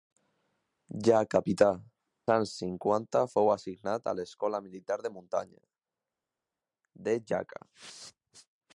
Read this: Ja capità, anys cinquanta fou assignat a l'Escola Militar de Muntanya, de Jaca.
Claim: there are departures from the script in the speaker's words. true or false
false